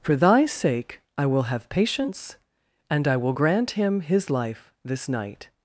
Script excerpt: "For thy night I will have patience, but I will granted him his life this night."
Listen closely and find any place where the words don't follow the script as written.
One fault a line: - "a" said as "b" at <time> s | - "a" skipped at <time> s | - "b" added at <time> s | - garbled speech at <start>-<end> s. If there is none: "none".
- "night" said as "sake" at 0.5 s
- "but" said as "and" at 2.9 s
- "granted" said as "grant" at 3.3 s